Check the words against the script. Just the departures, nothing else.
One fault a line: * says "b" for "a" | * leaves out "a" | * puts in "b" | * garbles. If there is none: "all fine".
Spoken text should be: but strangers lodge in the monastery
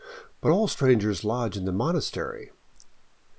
* puts in "all"